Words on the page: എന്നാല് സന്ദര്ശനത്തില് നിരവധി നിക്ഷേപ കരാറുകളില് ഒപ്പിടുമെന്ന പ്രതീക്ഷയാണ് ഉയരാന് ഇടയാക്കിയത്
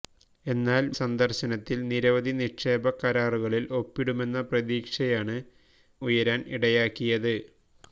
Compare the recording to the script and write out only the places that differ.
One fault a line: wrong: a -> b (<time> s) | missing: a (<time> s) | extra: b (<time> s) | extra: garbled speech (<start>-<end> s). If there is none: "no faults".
no faults